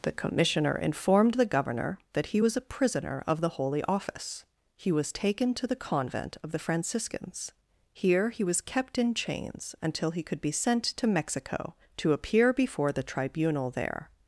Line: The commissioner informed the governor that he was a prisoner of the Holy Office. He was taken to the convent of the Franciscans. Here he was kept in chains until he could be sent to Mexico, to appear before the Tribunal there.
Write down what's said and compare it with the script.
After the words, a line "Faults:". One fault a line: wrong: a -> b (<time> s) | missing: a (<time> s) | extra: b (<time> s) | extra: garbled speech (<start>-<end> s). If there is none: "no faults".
The commissioner informed the governor that he was a prisoner of the Holy Office. He was taken to the convent of the Franciscans. Here he was kept in chains until he could be sent to Mexico, to appear before the Tribunal there.
Faults:
no faults